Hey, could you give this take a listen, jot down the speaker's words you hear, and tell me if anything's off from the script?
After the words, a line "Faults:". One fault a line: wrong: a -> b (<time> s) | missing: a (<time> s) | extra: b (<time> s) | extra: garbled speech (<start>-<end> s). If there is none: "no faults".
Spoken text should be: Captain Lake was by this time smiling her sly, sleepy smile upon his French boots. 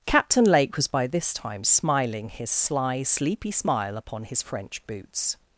Captain Lake was by this time smiling his sly, sleepy smile upon his French boots.
Faults:
wrong: her -> his (2.3 s)